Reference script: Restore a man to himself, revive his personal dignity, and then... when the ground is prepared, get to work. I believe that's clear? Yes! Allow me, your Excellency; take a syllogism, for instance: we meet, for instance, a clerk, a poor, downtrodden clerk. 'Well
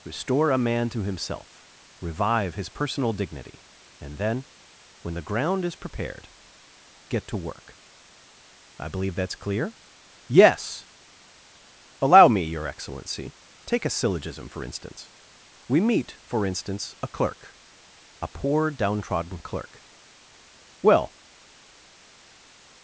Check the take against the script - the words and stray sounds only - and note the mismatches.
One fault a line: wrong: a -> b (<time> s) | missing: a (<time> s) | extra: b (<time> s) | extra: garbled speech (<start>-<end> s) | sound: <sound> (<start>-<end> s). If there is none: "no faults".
no faults